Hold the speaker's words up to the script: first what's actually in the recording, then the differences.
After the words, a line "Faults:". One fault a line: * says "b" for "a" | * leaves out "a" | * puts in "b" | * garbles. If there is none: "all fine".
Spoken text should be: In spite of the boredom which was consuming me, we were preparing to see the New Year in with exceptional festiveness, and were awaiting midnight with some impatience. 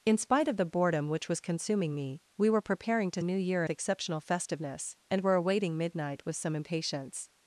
In spite of the boredom which was consuming me, we were preparing to New Year exceptional festiveness, and were awaiting midnight with some impatience.
Faults:
* leaves out "see the"
* leaves out "in with"